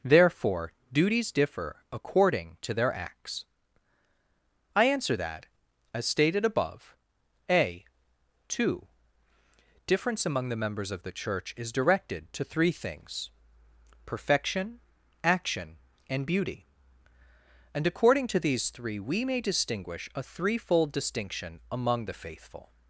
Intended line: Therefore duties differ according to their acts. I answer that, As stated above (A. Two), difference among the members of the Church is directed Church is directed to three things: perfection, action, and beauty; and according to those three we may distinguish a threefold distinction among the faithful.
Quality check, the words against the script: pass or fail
fail